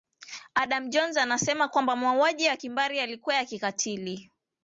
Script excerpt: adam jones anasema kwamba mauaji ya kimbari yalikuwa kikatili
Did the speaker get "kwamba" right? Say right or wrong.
right